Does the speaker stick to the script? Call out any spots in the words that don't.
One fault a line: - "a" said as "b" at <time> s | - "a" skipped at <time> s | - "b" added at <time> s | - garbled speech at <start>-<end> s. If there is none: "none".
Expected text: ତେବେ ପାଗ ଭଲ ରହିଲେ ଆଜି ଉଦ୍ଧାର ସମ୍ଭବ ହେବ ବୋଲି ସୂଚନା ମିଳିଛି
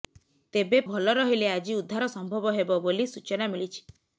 - "ପାଗ" skipped at 0.8 s